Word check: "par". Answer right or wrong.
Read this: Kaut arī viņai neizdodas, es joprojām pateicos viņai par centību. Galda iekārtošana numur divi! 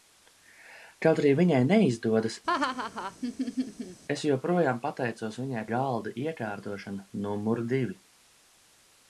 wrong